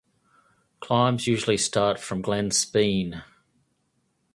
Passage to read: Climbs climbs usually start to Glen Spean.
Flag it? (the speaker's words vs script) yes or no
yes